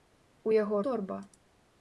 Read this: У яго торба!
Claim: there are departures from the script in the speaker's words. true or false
false